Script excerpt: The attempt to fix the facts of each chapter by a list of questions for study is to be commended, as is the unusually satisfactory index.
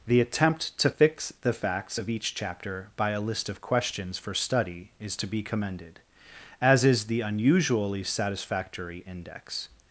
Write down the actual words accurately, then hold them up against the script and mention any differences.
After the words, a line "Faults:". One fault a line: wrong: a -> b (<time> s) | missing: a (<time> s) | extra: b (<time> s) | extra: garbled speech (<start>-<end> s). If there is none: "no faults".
The attempt to fix the facts of each chapter by a list of questions for study is to be commended, as is the unusually satisfactory index.
Faults:
no faults